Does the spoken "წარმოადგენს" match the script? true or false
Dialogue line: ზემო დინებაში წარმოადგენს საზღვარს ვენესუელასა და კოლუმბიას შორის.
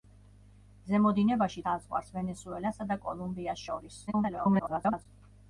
false